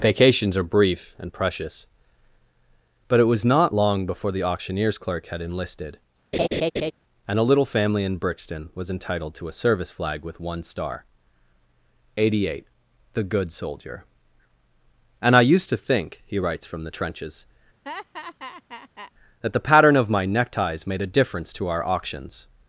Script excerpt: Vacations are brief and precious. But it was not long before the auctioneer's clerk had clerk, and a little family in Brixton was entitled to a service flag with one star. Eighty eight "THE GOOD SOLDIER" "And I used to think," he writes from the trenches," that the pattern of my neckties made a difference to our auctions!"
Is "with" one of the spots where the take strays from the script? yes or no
no